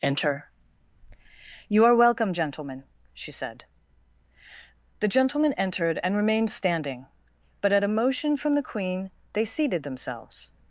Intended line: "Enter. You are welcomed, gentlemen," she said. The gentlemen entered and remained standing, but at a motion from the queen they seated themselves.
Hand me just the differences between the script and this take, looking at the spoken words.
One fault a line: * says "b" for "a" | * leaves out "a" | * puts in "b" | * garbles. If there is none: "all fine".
* says "welcome" for "welcomed"